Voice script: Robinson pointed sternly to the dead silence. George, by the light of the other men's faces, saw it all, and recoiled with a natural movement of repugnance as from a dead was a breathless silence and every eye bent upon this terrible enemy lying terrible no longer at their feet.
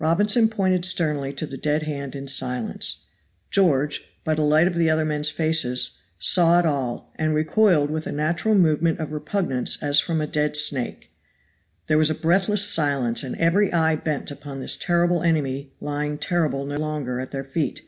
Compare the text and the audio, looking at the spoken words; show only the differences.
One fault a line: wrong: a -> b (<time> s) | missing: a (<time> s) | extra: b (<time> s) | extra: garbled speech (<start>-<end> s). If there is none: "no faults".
extra: hand in (1.8 s)
extra: snake There (10.6 s)